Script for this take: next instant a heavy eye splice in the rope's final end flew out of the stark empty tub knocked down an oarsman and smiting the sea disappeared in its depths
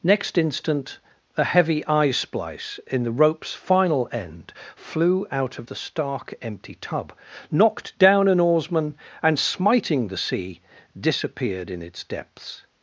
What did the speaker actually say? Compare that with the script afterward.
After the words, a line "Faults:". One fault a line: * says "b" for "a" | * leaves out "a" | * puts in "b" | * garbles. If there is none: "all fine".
next instant a heavy eye splice in the rope's final end flew out of the stark empty tub knocked down an oarsman and smiting the sea disappeared in its depths
Faults:
all fine